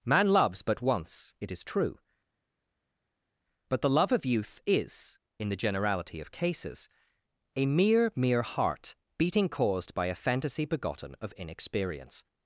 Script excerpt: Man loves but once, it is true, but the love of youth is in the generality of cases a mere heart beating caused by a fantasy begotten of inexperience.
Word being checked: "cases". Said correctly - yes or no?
yes